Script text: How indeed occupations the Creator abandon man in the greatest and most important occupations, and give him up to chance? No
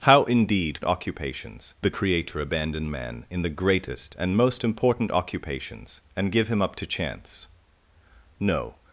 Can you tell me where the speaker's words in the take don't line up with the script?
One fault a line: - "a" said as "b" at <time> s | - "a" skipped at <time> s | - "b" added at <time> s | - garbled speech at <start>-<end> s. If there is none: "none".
none